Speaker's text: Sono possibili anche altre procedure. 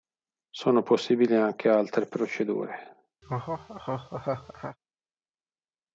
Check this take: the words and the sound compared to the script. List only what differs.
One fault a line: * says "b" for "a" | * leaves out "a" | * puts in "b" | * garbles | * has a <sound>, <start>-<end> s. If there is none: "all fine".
* has a laugh, 3.2-4.8 s